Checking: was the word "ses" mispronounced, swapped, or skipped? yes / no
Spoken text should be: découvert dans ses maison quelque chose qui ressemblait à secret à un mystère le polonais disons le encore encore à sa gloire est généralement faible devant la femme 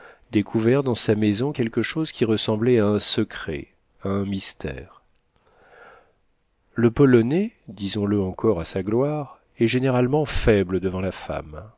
yes